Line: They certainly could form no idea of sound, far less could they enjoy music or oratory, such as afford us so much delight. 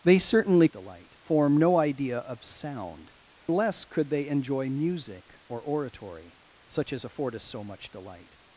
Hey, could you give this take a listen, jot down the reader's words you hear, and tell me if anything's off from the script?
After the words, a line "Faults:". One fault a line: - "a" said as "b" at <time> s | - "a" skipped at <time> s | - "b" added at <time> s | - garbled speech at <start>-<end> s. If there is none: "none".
They certainly delight form no idea of sound, less could they enjoy music or oratory, such as afford us so much delight.
Faults:
- "could" said as "delight" at 0.7 s
- "far" skipped at 3.1 s